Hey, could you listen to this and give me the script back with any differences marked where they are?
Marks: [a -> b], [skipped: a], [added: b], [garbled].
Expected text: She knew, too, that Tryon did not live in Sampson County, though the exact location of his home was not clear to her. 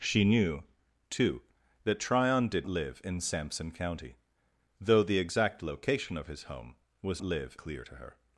She knew, too, that Tryon did [skipped: not] live in Sampson County, though the exact location of his home was [not -> live] clear to her.